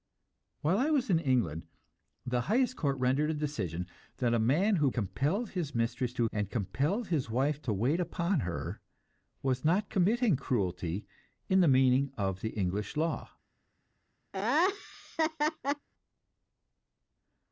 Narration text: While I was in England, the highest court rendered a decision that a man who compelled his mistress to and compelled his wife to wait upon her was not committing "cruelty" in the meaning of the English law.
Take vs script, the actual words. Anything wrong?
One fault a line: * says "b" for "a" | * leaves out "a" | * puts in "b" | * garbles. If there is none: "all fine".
all fine